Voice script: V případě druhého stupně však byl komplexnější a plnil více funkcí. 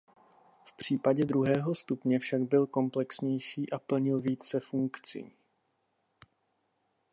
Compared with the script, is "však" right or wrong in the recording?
right